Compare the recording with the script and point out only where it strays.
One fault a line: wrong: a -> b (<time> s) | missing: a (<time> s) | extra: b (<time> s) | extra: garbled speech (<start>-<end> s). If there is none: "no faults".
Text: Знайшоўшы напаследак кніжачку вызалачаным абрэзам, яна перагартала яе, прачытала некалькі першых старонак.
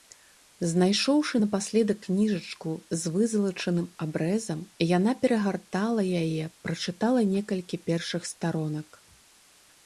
extra: з (3.0 s)